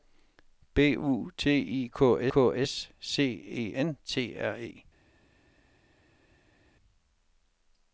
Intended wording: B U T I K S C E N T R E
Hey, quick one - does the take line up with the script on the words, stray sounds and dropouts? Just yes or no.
no